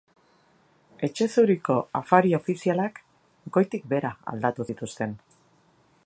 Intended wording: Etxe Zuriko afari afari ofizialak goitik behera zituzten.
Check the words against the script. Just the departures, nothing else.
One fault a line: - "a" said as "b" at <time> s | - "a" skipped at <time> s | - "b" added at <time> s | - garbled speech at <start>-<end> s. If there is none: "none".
- "afari" skipped at 2.3 s
- "aldatu" added at 4.3 s